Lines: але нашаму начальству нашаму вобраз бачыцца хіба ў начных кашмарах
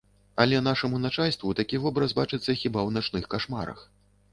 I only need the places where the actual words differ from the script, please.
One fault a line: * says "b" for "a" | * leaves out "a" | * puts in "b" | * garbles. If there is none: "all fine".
* says "такі" for "нашаму"